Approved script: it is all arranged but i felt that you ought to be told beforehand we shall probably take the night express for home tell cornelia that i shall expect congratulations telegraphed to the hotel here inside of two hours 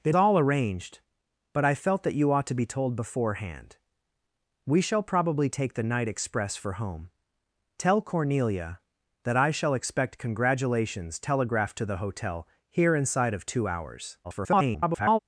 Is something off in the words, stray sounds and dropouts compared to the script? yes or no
yes